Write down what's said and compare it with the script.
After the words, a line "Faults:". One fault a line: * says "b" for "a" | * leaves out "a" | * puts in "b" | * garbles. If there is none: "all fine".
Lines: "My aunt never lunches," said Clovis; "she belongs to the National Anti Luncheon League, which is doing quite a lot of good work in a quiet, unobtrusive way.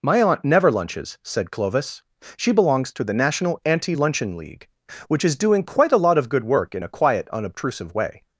"My aunt never lunches," said Clovis; "she belongs to the National Anti Luncheon League, which is doing quite a lot of good work in a quiet, unobtrusive way.
Faults:
all fine